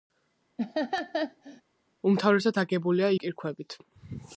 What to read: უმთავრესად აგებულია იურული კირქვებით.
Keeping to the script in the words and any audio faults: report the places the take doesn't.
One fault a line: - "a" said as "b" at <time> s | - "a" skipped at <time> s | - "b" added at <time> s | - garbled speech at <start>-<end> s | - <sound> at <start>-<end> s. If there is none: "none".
- laugh at 0.6-1.6 s
- "იურული" skipped at 3.1 s